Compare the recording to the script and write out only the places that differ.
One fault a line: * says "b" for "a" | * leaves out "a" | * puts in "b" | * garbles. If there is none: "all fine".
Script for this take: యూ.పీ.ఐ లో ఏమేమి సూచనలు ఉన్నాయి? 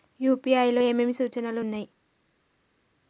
all fine